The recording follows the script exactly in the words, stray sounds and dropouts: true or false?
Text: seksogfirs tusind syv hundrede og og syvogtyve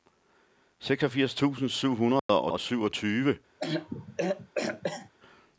false